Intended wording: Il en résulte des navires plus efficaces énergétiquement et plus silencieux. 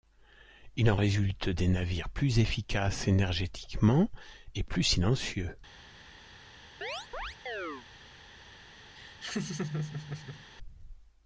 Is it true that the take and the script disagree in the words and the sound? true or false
true